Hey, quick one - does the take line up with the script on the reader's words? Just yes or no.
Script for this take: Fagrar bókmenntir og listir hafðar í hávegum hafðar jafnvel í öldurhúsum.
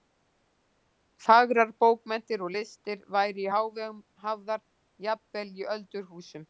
no